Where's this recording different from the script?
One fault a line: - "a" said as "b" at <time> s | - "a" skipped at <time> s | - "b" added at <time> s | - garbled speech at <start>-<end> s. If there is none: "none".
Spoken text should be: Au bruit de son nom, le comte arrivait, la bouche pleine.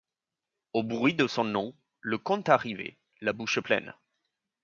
none